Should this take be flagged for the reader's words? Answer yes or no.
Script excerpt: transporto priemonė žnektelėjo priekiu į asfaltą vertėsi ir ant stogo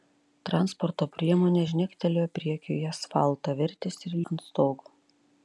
no